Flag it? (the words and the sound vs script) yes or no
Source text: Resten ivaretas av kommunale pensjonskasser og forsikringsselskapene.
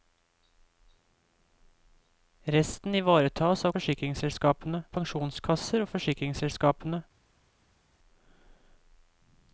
yes